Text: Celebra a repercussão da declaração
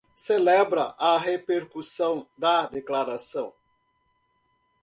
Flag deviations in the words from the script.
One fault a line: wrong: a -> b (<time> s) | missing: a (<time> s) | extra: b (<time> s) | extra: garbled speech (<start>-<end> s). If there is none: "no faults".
no faults